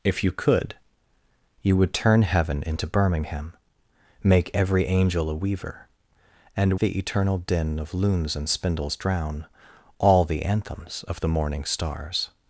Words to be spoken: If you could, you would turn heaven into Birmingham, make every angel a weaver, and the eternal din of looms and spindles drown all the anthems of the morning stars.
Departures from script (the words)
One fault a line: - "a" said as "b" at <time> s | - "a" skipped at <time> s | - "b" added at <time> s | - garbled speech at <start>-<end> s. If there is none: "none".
none